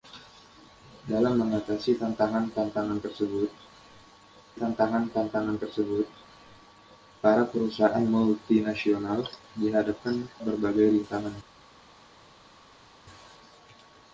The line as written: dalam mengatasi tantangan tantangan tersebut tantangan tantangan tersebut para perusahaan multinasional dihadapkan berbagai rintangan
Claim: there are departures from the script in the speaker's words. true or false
false